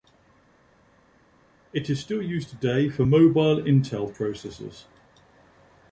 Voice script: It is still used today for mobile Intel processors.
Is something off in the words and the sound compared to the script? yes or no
no